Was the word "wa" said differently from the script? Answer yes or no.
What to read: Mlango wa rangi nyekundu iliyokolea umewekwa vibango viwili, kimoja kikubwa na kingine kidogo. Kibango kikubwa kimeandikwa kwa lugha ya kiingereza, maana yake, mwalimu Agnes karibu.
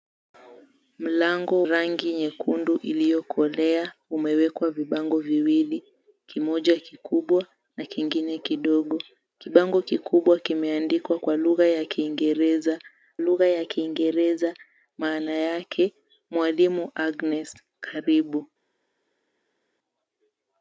yes